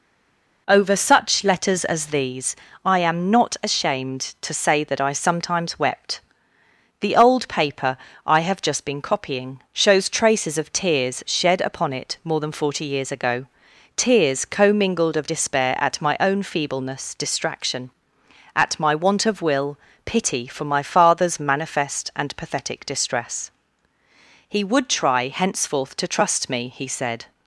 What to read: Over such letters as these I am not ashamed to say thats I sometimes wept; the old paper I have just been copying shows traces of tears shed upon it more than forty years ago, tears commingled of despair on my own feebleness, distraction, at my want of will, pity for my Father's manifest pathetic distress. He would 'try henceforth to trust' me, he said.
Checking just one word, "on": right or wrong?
wrong